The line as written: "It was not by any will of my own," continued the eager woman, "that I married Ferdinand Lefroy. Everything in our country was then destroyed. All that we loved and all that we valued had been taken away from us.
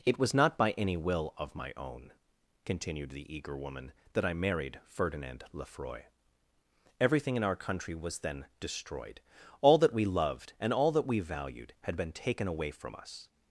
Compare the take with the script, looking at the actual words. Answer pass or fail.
pass